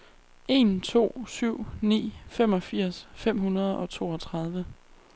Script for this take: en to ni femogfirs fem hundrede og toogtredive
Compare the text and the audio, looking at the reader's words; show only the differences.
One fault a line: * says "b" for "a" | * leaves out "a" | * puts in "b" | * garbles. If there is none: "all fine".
* puts in "syv"